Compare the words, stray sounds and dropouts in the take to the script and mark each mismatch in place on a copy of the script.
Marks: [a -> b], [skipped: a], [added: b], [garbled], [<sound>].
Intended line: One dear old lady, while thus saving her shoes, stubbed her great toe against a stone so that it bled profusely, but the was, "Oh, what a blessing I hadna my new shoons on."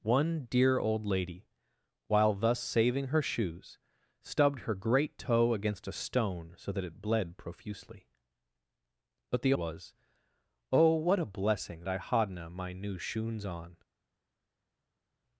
One dear old lady, while thus saving her shoes, stubbed her great toe against a stone so that it bled profusely, but the was, "Oh, what a blessing I hadna my new shoons on."